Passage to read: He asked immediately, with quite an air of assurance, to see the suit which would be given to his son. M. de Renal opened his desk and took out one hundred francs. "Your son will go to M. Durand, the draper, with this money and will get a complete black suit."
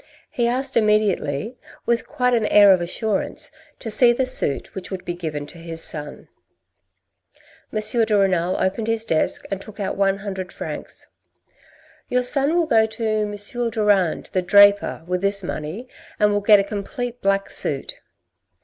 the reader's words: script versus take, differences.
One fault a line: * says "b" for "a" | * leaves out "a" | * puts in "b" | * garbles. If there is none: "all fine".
all fine